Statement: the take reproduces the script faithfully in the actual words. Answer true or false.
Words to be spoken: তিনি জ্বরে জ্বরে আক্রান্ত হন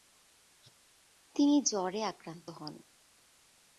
false